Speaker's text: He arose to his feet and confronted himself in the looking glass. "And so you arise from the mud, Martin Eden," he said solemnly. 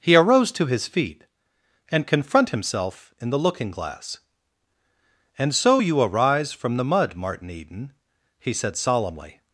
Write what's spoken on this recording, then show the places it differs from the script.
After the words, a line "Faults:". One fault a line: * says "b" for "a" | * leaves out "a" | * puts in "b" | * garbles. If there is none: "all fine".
He arose to his feet and confront himself in the looking glass. "And so you arise from the mud, Martin Eden," he said solemnly.
Faults:
* says "confront" for "confronted"